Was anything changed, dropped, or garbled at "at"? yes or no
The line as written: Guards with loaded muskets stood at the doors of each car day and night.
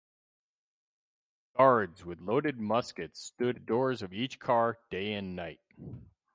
yes